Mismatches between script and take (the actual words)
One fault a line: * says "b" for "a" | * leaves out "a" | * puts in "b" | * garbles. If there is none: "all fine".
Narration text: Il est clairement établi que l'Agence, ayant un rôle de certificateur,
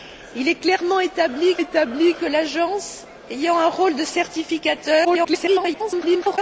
* puts in "établi"
* garbles